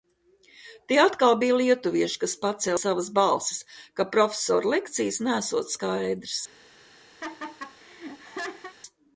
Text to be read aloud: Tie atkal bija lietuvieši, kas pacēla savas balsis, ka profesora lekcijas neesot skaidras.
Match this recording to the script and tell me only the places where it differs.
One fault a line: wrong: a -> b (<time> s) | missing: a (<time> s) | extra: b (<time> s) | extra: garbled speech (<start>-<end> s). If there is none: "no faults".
no faults